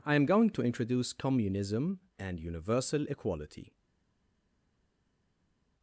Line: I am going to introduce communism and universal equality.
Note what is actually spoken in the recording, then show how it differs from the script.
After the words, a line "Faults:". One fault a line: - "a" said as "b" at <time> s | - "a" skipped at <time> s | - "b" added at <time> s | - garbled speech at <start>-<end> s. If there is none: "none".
I am going to introduce communism and universal equality.
Faults:
none